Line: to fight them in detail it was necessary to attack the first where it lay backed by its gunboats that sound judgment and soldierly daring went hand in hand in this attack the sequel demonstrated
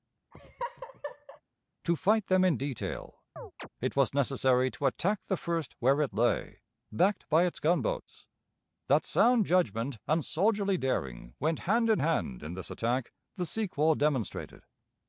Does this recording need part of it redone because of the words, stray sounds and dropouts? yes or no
yes